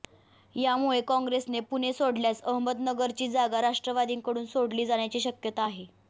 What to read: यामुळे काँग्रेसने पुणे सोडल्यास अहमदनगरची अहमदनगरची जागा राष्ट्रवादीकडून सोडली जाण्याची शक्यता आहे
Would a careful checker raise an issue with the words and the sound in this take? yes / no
yes